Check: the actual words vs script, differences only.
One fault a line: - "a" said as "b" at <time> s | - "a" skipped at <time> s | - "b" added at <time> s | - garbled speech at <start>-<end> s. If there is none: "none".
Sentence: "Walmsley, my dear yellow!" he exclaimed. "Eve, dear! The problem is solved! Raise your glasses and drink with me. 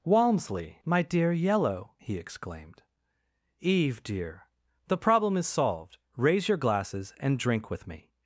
none